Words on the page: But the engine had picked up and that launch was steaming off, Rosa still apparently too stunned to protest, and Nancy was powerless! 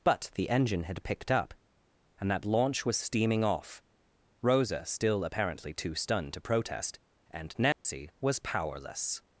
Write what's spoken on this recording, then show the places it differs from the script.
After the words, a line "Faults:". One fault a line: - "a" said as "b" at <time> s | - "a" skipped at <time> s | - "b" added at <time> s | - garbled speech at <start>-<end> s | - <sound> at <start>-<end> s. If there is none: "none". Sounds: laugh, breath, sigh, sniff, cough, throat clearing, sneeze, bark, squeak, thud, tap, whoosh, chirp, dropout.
But the engine had picked up and that launch was steaming off, Rosa still apparently too stunned to protest, and Nancy was powerless!
Faults:
- dropout at 7.7-7.8 s